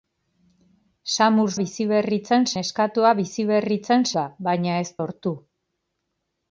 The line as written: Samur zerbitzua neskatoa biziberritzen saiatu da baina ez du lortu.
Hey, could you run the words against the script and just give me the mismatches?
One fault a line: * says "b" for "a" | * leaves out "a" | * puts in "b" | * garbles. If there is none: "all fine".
* says "biziberritzen" for "zerbitzua"
* leaves out "saiatu"
* leaves out "du"